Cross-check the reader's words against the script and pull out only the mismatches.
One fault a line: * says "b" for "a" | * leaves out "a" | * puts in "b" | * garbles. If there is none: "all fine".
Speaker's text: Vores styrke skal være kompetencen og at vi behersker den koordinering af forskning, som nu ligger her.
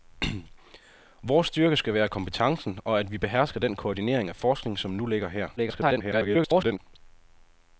* garbles